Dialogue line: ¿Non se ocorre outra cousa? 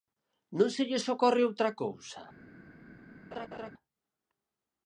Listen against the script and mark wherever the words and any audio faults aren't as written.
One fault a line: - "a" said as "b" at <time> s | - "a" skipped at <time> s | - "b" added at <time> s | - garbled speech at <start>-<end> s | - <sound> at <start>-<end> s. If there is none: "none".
- "lles" added at 0.9 s
- laugh at 3.3-3.7 s